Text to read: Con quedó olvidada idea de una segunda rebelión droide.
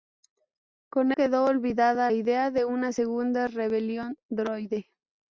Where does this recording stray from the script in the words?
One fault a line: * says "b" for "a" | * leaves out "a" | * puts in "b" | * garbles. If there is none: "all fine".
all fine